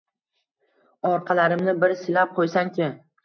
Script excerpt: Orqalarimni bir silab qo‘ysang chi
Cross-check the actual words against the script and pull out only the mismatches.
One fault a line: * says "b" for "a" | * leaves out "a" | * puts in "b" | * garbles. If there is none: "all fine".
all fine